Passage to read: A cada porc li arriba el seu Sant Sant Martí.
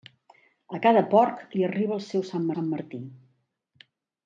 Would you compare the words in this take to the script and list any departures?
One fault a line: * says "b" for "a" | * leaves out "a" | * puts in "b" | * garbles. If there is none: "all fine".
all fine